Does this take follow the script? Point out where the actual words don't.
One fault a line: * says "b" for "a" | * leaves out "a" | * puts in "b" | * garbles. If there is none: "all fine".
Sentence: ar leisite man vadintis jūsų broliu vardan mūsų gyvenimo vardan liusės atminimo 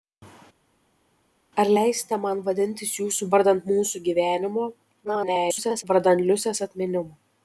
* leaves out "broliu"
* garbles